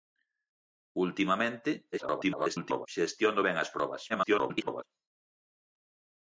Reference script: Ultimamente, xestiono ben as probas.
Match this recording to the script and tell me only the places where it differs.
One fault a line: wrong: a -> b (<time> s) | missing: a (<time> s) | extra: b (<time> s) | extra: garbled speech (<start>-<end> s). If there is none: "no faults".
extra: garbled speech (1.9-2.9 s)
extra: garbled speech (4.1-4.8 s)